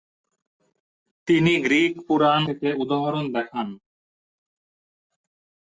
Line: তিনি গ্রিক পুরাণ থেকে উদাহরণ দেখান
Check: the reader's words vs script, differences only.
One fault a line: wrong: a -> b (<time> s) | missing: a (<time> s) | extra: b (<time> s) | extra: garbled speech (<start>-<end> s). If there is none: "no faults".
no faults